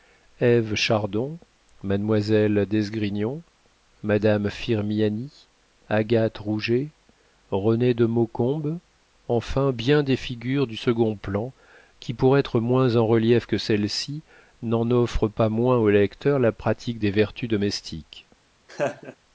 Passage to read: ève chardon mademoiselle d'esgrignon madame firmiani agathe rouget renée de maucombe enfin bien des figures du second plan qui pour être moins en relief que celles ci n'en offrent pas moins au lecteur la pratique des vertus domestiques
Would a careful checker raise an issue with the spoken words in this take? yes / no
no